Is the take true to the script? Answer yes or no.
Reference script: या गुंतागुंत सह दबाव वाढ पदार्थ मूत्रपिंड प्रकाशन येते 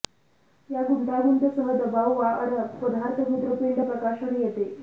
yes